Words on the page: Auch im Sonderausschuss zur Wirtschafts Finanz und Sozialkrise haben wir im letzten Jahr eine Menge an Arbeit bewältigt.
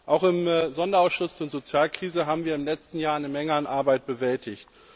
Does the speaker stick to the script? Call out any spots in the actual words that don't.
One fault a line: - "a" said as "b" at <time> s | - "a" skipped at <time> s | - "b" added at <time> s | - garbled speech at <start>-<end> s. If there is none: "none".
- "zur Wirtschafts Finanz" skipped at 1.4 s